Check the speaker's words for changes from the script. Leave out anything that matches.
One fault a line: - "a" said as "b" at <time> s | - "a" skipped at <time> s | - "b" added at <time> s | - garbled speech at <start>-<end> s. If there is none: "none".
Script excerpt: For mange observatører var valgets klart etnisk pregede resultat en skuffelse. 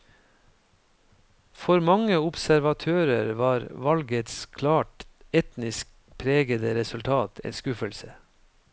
none